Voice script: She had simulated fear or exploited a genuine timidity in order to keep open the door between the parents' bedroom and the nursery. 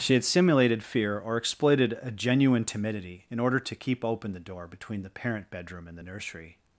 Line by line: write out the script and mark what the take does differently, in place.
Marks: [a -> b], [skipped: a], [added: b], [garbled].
She had simulated fear or exploited a genuine timidity in order to keep open the door between the [parents' -> parent] bedroom and the nursery.